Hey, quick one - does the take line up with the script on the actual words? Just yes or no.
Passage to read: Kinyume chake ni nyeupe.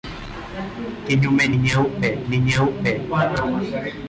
no